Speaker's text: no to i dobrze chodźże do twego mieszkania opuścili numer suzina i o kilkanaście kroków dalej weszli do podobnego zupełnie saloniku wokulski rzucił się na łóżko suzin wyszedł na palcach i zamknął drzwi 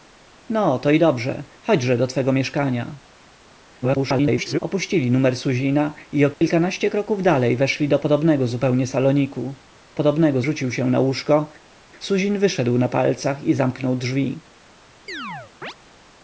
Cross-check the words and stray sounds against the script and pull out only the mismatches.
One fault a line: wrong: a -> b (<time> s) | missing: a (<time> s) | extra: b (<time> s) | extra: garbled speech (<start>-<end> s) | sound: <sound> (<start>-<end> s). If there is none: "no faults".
extra: garbled speech (3.8-4.6 s)
sound: dropout (6.3-6.4 s)
wrong: wokulski -> podobnego (9.9 s)
sound: chirp (15.1-15.7 s)